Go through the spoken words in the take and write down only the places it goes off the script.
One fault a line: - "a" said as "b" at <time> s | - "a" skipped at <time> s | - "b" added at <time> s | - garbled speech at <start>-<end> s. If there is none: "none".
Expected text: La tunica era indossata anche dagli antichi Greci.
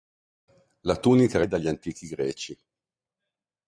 - "indossata anche" skipped at 1.5 s